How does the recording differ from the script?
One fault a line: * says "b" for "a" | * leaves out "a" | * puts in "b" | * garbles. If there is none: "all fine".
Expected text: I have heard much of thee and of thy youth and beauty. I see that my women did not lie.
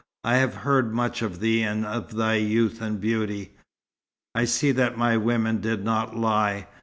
all fine